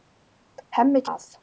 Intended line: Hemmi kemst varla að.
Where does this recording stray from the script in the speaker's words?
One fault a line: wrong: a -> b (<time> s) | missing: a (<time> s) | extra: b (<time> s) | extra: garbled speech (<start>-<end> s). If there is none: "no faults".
missing: kemst varla (1.0 s)